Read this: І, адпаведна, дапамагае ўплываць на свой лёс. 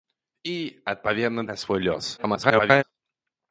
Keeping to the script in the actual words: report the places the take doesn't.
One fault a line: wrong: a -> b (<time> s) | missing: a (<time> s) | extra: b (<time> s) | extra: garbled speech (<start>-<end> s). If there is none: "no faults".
missing: дапамагае ўплываць (1.4 s)
extra: garbled speech (2.2-2.8 s)